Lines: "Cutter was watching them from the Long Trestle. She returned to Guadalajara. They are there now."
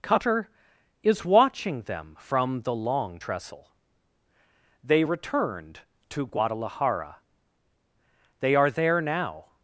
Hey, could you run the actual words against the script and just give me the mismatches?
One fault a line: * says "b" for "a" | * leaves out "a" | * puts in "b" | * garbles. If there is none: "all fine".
* says "is" for "was"
* says "They" for "She"